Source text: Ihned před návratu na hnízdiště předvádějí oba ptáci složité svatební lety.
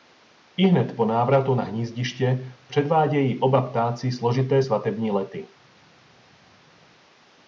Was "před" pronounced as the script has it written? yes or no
no